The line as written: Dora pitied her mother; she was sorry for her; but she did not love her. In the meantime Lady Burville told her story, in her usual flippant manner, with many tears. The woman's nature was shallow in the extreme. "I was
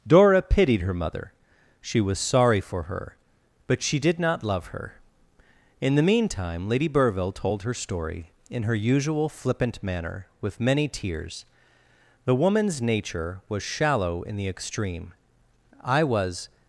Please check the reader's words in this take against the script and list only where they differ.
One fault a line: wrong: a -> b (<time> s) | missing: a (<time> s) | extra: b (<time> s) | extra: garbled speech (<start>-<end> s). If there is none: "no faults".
no faults